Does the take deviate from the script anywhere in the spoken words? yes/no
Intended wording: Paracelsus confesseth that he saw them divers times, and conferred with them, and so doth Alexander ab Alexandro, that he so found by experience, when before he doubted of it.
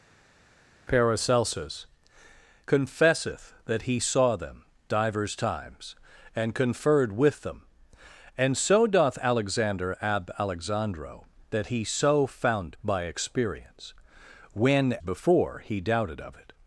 no